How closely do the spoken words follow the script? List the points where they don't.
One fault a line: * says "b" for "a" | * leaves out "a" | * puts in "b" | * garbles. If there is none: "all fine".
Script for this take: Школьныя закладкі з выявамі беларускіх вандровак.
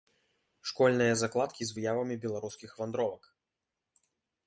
all fine